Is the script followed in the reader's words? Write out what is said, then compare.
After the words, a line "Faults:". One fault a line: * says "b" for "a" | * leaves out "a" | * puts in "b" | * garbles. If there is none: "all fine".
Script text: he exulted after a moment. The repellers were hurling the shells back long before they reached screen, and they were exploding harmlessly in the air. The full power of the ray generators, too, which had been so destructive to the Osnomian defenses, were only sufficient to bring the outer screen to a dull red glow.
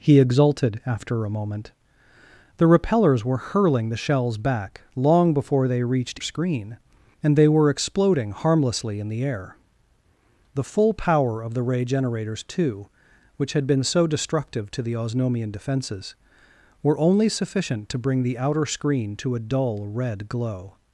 he exulted after a moment. The repellers were hurling the shells back long before they reached screen, and they were exploding harmlessly in the air. The full power of the ray generators, too, which had been so destructive to the Osnomian defenses, were only sufficient to bring the outer screen to a dull red glow.
Faults:
all fine